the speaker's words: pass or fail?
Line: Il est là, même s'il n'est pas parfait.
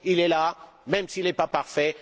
pass